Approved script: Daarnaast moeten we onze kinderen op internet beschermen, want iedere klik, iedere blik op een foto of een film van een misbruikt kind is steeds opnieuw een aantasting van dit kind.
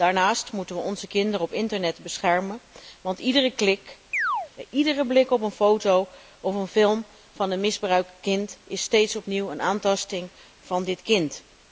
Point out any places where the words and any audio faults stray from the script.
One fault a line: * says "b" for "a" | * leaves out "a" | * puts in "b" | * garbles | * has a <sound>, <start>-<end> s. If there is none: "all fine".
* has a chirp, 4.1-4.5 s